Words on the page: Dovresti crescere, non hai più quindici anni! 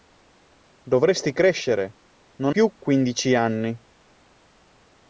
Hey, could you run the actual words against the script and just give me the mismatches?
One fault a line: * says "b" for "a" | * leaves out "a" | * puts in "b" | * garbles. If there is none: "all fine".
* leaves out "hai"